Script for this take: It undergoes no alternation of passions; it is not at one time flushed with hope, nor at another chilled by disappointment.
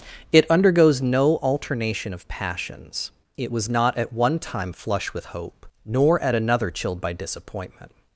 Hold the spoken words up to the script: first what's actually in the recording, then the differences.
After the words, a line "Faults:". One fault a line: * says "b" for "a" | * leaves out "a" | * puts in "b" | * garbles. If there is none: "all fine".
It undergoes no alternation of passions; it was not at one time flush with hope, nor at another chilled by disappointment.
Faults:
* says "was" for "is"
* says "flush" for "flushed"